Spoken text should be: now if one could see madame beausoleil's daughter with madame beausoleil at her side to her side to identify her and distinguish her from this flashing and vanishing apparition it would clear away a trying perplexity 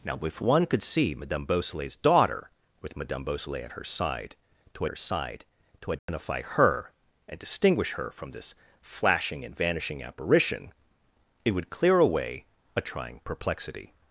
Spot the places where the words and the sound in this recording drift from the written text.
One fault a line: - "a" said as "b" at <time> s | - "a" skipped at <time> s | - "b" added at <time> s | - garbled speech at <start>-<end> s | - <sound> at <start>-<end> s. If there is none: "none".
- dropout at 6.0-6.1 s